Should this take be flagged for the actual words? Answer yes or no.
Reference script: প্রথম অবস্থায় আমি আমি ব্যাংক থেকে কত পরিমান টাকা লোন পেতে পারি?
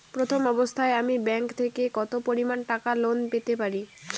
yes